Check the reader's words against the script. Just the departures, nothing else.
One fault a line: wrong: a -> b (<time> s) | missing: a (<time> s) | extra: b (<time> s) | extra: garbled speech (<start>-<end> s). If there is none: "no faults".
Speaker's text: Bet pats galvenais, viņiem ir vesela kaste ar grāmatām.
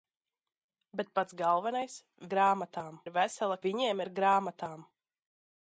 wrong: viņiem -> grāmatām (2.3 s)
wrong: kaste -> viņiem (3.7 s)